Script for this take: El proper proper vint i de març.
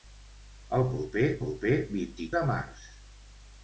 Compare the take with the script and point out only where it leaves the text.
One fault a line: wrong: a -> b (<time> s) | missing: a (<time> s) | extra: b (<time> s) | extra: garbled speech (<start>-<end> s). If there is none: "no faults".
no faults